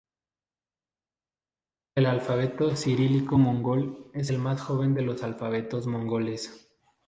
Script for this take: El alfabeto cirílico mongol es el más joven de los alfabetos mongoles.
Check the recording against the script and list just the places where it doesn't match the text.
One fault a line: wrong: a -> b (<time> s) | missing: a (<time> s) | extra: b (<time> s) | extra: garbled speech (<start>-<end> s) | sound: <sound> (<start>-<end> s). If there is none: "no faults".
no faults